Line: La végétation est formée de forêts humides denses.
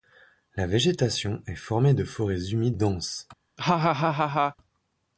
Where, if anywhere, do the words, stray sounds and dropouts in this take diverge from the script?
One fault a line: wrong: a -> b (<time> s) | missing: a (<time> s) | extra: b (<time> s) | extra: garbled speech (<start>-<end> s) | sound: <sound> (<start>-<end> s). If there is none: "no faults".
sound: laugh (3.6-4.6 s)